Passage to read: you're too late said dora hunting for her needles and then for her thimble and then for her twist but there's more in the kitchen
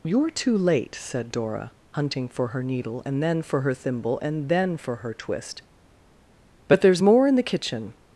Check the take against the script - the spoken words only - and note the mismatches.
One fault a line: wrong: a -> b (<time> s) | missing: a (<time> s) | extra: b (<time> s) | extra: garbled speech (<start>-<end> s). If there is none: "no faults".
wrong: needles -> needle (2.6 s)